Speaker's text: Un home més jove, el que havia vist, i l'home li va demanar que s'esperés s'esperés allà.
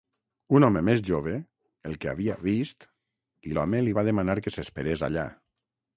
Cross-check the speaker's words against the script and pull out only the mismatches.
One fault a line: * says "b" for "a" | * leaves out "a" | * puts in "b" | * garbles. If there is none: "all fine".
* leaves out "s'esperés"